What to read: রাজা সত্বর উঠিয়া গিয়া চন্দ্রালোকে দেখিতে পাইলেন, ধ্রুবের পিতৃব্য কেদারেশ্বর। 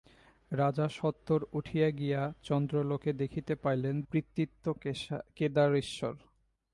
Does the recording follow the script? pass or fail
fail